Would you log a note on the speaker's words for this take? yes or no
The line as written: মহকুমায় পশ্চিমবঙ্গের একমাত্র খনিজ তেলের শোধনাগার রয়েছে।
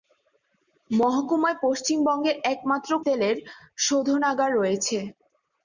yes